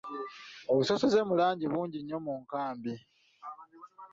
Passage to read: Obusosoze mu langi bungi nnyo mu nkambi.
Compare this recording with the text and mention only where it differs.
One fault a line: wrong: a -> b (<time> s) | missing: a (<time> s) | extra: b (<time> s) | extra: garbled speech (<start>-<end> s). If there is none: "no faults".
no faults